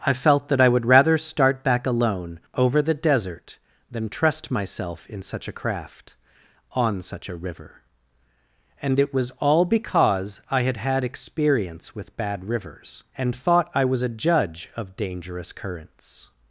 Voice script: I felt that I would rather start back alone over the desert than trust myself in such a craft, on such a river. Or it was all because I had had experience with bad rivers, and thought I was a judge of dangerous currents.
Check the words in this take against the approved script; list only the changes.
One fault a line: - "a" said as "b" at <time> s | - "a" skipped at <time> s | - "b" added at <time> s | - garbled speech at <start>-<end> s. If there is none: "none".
- "Or" said as "And" at 8.8 s